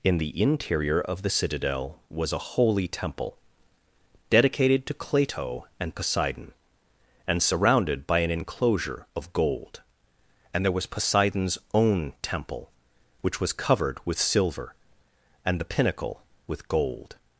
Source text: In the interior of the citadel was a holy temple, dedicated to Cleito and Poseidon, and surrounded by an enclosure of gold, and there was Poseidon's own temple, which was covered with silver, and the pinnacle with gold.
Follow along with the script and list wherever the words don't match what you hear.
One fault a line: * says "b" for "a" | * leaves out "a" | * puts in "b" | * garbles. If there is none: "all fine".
all fine